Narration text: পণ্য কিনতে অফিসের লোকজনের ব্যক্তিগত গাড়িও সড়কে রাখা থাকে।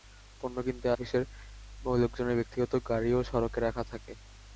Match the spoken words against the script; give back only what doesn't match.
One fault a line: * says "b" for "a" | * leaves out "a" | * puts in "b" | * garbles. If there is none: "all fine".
all fine